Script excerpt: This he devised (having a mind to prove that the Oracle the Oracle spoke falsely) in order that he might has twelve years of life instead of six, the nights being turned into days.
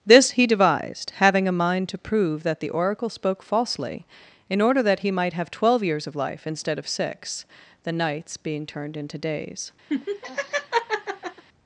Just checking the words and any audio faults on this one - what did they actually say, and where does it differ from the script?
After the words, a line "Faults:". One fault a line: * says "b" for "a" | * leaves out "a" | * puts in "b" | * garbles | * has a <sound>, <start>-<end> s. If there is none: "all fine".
This he devised (having a mind to prove that the Oracle spoke falsely) in order that he might have twelve years of life instead of six, the nights being turned into days.
Faults:
* leaves out "the Oracle"
* says "have" for "has"
* has a laugh, 9.9-11.4 s